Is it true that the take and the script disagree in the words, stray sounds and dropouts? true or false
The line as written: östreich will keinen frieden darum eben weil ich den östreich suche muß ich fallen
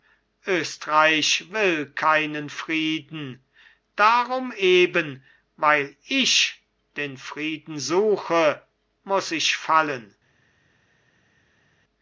true